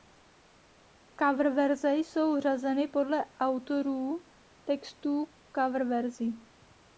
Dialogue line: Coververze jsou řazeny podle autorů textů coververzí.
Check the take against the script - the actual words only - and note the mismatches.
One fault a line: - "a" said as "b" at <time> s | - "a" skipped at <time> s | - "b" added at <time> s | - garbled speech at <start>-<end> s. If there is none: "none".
none